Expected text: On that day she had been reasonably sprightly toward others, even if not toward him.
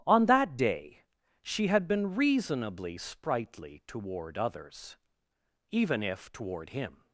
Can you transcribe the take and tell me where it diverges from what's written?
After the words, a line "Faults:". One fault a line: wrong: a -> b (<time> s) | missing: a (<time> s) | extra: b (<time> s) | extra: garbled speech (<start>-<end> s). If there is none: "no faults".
On that day she had been reasonably sprightly toward others, even if toward him.
Faults:
missing: not (6.3 s)